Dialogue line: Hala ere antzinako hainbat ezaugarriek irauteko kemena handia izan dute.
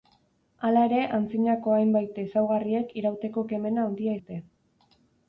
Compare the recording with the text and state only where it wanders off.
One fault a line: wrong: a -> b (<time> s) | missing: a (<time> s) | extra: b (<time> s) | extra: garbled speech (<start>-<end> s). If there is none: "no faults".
missing: izan (4.2 s)